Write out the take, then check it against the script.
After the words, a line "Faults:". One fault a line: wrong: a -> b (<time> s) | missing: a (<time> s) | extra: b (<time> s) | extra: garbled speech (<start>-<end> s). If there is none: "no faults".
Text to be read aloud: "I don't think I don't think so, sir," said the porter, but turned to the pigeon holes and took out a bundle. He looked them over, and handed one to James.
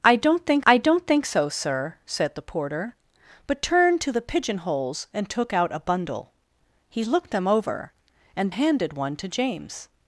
"I don't think I don't think so, sir," said the porter, but turned to the pigeon holes and took out a bundle. He looked them over, and handed one to James.
Faults:
no faults